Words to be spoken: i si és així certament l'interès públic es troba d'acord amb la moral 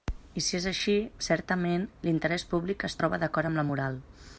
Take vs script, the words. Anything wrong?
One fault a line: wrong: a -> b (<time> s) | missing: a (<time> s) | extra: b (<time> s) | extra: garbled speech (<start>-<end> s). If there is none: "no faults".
no faults